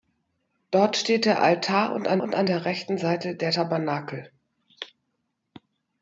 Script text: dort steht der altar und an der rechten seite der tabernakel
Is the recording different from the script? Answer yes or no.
yes